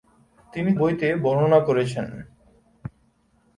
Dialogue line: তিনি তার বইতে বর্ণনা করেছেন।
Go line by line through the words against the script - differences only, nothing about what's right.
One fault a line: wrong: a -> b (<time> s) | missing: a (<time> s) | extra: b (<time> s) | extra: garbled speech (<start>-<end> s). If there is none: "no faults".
missing: তার (0.7 s)